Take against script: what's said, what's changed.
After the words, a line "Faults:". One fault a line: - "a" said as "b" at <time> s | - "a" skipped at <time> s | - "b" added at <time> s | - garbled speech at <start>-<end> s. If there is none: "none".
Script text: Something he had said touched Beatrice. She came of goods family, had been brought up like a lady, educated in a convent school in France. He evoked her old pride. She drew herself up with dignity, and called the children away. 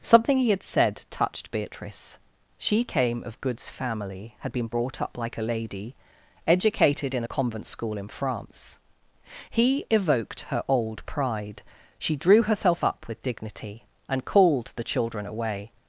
Something he had said touched Beatrice. She came of goods family, had been brought up like a lady, educated in a convent school in France. He evoked her old pride. She drew herself up with dignity, and called the children away.
Faults:
none